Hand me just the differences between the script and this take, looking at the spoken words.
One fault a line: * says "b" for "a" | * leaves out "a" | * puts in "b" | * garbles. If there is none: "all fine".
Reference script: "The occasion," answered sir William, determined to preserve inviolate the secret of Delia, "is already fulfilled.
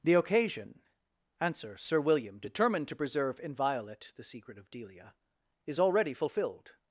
* says "answer" for "answered"